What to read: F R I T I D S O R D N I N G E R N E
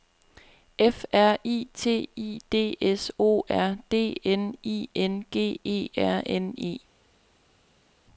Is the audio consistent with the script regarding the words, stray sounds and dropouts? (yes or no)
yes